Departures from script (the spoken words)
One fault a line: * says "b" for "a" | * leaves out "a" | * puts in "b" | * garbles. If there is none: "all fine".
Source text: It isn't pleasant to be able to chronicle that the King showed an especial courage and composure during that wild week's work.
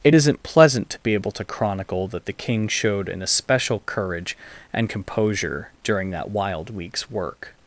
all fine